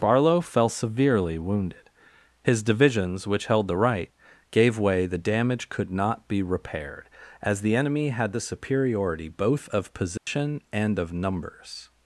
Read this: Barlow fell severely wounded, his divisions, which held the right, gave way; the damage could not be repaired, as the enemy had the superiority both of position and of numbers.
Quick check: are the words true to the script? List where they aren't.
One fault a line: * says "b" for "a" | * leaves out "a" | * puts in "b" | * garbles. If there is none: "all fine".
all fine